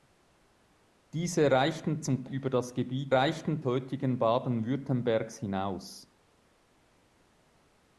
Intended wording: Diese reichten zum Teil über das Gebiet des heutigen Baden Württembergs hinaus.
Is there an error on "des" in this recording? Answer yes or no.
yes